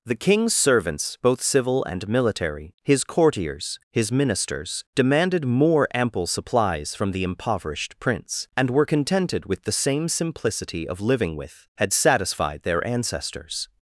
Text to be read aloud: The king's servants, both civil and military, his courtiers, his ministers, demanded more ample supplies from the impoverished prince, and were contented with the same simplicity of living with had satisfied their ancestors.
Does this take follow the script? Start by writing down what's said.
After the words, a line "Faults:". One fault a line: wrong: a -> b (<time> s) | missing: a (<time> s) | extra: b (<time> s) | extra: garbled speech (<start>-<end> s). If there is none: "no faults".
The king's servants, both civil and military, his courtiers, his ministers, demanded more ample supplies from the impoverished prince, and were contented with the same simplicity of living with had satisfied their ancestors.
Faults:
no faults